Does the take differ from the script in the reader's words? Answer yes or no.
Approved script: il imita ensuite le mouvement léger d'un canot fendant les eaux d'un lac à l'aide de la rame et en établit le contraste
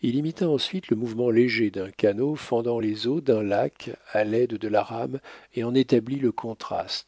no